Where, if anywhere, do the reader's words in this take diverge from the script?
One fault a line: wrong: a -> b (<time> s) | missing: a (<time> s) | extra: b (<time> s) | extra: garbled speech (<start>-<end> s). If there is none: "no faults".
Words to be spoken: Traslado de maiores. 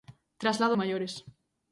no faults